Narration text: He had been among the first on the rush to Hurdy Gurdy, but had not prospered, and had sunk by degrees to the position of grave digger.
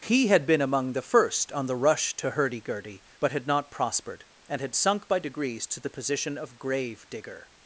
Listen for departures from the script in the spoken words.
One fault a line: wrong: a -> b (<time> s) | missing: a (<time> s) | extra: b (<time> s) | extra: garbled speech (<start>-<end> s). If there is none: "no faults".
no faults